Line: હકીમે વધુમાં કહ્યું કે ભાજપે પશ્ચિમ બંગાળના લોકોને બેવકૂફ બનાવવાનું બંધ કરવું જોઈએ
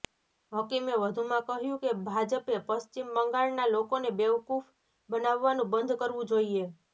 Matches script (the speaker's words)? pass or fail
pass